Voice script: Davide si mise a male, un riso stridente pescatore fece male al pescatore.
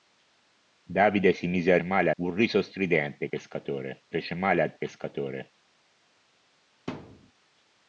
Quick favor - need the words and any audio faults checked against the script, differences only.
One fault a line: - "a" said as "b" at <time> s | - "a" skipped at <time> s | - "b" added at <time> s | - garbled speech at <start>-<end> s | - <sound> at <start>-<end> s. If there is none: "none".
- thud at 6.9-7.3 s